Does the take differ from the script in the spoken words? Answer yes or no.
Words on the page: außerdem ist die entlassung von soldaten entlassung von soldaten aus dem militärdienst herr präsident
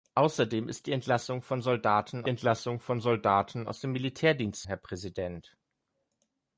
no